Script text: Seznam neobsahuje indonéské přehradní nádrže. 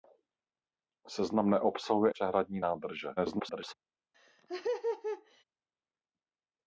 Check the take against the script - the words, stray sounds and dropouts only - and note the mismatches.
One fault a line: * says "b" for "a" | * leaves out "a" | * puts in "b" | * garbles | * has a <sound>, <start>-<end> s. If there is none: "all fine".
* leaves out "indonéské"
* garbles
* has a laugh, 4.1-5.4 s